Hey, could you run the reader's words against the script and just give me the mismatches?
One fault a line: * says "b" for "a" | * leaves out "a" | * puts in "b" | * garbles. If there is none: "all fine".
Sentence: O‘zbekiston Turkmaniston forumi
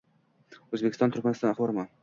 all fine